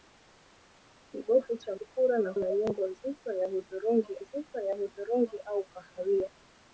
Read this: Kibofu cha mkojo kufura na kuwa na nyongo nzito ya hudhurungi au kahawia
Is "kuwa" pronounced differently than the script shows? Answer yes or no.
yes